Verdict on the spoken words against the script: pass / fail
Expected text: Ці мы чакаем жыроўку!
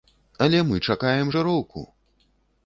fail